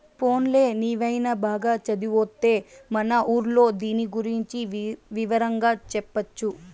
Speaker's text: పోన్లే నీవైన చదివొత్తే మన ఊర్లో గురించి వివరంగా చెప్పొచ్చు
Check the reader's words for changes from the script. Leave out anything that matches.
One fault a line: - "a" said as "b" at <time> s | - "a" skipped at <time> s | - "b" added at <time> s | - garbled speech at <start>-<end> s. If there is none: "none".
- "బాగా" added at 1.4 s
- "దీని" added at 3.8 s